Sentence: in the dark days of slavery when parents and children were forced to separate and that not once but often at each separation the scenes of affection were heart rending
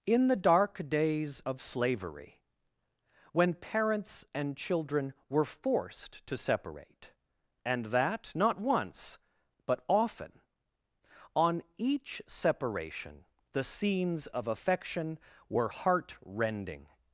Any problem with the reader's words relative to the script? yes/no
yes